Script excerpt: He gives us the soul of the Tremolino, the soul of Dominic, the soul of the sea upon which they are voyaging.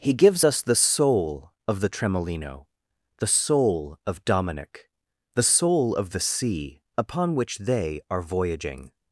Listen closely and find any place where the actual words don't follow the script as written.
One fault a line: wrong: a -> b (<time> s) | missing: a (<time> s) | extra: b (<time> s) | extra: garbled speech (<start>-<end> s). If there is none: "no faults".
no faults